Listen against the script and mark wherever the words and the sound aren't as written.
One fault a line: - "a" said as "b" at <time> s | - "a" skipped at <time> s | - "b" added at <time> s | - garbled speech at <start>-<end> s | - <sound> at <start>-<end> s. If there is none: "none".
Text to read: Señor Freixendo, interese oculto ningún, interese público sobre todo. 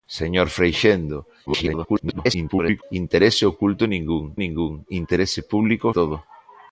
- garbled speech at 1.5-2.8 s
- "ningún" added at 4.4 s
- "sobre" skipped at 5.9 s